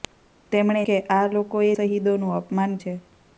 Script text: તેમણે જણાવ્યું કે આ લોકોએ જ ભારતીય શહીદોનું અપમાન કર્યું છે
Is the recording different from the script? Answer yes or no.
yes